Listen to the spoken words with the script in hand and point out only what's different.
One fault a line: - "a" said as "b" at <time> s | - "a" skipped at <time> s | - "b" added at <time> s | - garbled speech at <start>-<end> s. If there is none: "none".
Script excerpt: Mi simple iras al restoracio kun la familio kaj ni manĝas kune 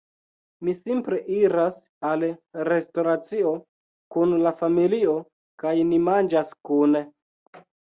none